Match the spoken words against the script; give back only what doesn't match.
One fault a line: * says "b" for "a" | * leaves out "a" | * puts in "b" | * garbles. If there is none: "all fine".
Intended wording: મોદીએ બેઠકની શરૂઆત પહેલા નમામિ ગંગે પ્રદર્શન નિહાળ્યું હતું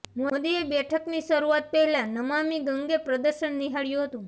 all fine